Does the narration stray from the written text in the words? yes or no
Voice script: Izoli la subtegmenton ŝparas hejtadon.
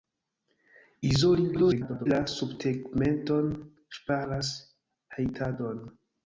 yes